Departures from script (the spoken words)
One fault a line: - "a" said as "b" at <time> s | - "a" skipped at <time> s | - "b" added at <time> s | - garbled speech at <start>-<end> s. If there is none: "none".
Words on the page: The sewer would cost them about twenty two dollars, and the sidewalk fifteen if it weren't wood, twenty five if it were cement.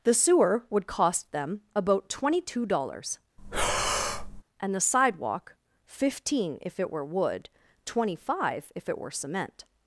- "weren't" said as "were" at 6.9 s